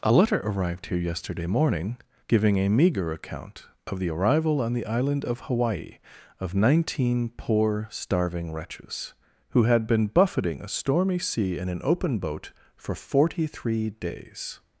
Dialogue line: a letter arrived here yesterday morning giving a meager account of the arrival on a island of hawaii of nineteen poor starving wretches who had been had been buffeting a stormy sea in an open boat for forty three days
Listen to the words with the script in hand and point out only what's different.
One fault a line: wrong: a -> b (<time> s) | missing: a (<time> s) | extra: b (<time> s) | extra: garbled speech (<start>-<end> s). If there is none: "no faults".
wrong: a -> the (4.7 s)
missing: had been (10.1 s)